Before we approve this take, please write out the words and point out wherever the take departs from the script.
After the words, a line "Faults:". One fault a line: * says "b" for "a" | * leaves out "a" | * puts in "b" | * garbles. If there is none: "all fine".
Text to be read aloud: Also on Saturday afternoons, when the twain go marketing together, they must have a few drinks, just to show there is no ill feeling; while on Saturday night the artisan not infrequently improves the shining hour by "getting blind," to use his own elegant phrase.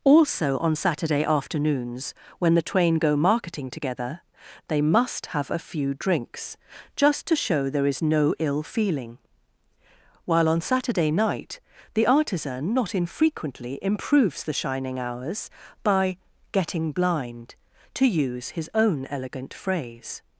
Also on Saturday afternoons, when the twain go marketing together, they must have a few drinks, just to show there is no ill feeling; while on Saturday night the artisan not infrequently improves the shining hours by "getting blind," to use his own elegant phrase.
Faults:
* says "hours" for "hour"